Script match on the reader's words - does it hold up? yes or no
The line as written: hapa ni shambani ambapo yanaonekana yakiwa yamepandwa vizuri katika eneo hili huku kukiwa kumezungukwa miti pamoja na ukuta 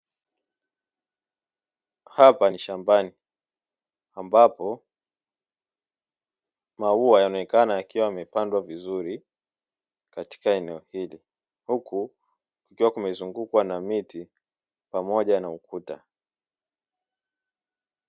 no